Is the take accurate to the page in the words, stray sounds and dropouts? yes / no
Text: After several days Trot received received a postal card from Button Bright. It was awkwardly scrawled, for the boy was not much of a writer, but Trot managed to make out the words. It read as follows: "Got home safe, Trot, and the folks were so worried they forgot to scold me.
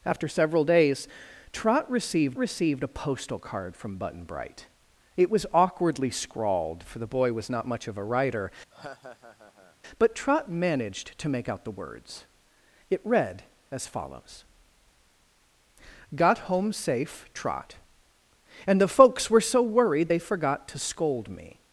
no